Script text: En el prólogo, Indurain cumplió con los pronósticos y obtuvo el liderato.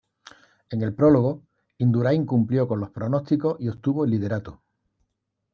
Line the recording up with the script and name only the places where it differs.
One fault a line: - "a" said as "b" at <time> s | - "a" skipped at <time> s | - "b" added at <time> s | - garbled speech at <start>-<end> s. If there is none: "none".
none